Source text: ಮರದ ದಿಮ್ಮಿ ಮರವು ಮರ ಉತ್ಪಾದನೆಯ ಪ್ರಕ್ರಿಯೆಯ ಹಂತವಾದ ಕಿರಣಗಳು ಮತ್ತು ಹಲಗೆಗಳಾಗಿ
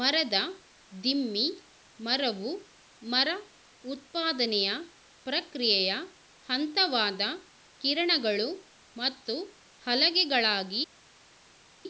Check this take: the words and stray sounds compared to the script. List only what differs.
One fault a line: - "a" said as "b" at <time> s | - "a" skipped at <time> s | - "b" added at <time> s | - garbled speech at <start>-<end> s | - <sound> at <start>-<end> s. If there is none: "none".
none